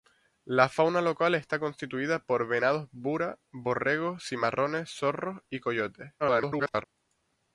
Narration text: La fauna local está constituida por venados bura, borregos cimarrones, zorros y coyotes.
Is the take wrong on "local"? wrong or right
right